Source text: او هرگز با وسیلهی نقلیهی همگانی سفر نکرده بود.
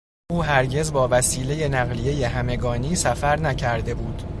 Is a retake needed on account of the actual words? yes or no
no